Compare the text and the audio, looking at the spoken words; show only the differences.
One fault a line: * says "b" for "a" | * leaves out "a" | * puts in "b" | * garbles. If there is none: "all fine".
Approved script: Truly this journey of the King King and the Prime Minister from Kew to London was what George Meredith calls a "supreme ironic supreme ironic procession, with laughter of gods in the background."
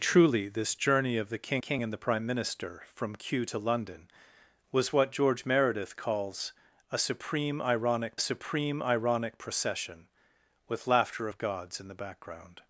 all fine